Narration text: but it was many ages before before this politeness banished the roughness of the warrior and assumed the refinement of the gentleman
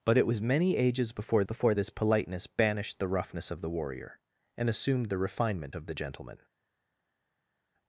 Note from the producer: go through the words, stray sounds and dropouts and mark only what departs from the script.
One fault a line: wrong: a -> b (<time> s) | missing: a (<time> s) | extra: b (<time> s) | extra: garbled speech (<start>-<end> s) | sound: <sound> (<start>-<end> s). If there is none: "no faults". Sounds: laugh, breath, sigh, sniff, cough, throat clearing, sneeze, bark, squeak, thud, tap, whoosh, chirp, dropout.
no faults